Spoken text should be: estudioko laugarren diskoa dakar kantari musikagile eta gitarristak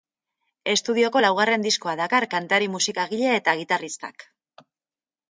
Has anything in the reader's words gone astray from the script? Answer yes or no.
no